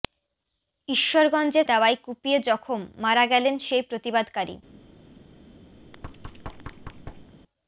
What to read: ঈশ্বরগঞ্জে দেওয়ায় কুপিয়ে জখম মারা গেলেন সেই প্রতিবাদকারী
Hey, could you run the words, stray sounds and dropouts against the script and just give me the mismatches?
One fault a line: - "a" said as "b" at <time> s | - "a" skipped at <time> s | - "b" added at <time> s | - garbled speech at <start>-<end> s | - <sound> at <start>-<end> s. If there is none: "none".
- thud at 5.8-7.3 s